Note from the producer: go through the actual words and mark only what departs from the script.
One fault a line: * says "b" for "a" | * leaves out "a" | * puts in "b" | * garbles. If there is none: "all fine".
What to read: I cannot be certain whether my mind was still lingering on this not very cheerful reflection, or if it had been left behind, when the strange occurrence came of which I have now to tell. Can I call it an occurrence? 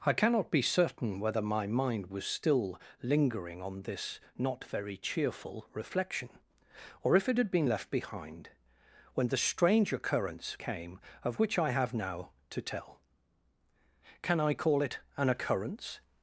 all fine